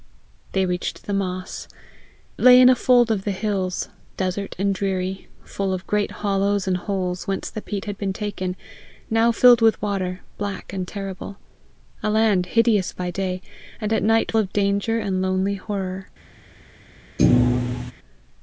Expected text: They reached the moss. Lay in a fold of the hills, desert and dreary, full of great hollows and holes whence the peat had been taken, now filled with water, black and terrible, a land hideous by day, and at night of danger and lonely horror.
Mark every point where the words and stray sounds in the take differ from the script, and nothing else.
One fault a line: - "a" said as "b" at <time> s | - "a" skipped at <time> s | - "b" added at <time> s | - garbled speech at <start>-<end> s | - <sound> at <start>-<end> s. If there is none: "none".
- thud at 17.2-17.9 s